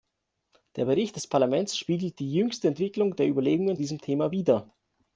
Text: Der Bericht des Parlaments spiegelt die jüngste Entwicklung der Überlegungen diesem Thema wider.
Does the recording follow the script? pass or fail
pass